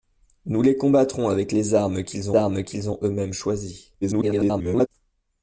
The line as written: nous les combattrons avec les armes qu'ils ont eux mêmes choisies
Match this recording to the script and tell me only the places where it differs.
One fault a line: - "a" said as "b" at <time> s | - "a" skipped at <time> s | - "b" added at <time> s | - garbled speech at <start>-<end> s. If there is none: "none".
- "armes qu'ils" added at 2.4 s
- garbled speech at 4.0-4.9 s